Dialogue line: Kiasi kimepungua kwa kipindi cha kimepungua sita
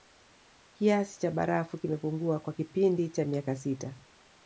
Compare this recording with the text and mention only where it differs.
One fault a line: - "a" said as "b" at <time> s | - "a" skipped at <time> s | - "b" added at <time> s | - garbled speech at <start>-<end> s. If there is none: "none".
- "cha barafu" added at 1.2 s
- "kimepungua" said as "miaka" at 3.2 s